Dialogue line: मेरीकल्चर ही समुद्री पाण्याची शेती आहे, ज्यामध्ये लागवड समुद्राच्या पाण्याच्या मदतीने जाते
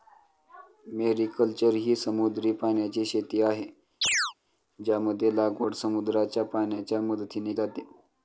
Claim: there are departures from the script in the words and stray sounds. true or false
true